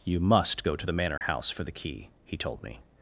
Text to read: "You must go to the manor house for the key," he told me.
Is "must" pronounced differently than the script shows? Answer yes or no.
no